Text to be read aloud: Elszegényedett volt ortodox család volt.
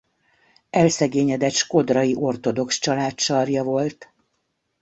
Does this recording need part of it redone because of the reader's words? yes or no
yes